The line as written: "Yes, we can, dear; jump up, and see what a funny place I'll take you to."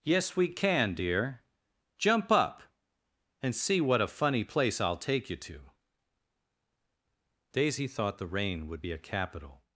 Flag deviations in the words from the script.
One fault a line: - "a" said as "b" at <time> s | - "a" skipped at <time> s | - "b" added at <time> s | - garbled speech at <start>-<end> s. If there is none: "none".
- "Daisy thought the rain would be a capital" added at 7.5 s